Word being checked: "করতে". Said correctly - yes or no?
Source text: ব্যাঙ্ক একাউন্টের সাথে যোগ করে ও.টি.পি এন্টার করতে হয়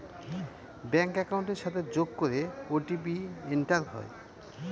no